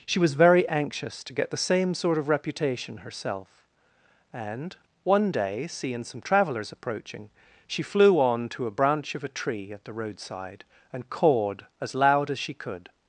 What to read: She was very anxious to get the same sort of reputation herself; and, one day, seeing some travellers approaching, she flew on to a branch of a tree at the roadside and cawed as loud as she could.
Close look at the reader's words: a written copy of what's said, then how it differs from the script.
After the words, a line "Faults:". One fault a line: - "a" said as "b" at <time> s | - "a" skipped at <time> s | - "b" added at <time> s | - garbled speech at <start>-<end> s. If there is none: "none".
She was very anxious to get the same sort of reputation herself; and, one day, seeing some travellers approaching, she flew on to a branch of a tree at the roadside and cawed as loud as she could.
Faults:
none